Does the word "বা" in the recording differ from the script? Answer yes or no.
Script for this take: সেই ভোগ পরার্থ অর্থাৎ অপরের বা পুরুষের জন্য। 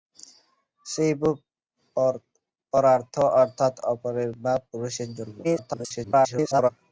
no